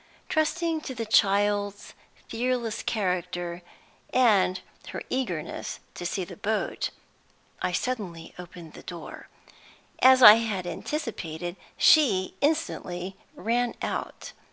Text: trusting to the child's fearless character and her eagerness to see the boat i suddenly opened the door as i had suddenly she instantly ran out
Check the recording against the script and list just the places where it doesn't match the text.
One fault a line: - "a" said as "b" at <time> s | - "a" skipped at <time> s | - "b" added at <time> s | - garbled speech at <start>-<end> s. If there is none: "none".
- "suddenly" said as "anticipated" at 10.7 s